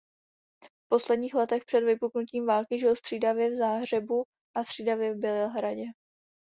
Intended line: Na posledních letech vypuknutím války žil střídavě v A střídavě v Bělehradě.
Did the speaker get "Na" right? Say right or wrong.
wrong